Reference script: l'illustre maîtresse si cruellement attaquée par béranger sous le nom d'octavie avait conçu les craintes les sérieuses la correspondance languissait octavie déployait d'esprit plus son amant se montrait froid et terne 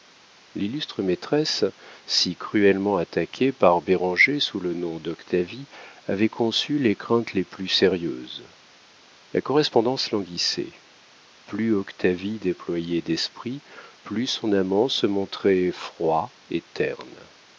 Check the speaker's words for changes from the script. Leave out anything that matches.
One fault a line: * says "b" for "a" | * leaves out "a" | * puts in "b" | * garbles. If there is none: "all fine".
* puts in "plus"
* puts in "plus"